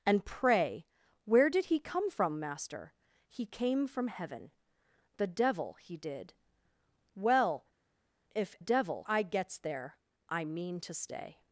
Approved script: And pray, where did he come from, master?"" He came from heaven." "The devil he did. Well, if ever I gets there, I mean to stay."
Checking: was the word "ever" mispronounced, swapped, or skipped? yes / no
yes